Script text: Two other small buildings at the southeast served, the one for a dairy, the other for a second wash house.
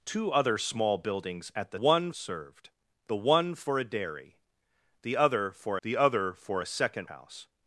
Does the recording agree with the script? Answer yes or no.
no